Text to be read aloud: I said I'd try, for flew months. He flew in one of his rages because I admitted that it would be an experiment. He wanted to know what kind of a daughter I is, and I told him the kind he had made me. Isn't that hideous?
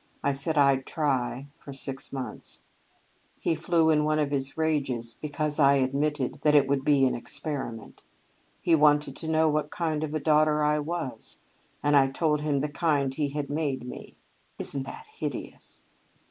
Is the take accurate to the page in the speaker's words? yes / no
no